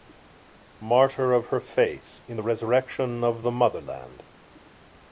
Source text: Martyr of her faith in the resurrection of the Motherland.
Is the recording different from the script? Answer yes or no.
no